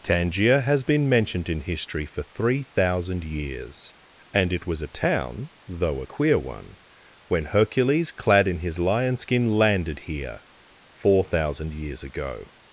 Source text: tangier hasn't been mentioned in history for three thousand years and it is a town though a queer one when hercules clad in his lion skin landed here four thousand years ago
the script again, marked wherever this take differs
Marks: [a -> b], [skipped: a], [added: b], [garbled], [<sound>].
tangier [hasn't -> has] been mentioned in history for three thousand years and it [is -> was] a town though a queer one when hercules clad in his lion skin landed here four thousand years ago